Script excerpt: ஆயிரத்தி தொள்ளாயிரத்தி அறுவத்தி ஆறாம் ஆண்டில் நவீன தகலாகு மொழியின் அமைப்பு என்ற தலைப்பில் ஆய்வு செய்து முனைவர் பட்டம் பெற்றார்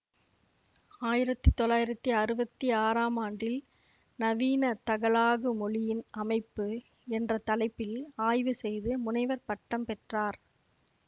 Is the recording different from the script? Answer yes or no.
no